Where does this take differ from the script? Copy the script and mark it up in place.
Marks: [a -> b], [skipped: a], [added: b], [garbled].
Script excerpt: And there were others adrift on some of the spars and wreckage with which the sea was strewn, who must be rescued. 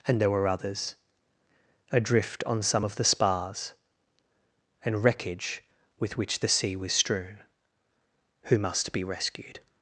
And there were others adrift on some of the spars and wreckage with which the sea was strewn, who must be rescued.